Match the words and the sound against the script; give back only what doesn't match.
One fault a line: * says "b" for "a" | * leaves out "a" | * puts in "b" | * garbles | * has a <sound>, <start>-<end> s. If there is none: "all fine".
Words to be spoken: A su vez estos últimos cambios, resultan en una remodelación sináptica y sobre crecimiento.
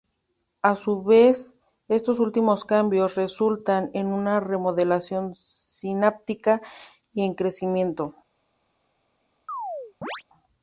* says "en" for "sobre"
* has a chirp, 9.5-10.2 s